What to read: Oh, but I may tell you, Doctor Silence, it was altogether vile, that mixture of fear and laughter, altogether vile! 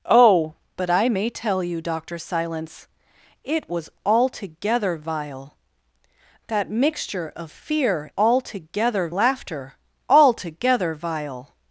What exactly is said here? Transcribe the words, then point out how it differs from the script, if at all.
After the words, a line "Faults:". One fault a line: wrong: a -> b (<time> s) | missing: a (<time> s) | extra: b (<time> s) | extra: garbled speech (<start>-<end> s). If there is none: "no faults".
Oh, but I may tell you, Doctor Silence, it was altogether vile, that mixture of fear altogether laughter, altogether vile!
Faults:
wrong: and -> altogether (8.1 s)